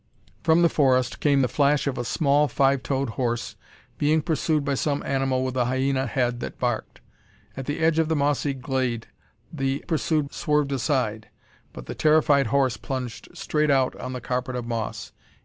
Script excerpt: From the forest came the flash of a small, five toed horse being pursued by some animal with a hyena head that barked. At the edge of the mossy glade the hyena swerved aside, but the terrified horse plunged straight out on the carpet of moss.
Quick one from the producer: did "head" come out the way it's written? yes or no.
yes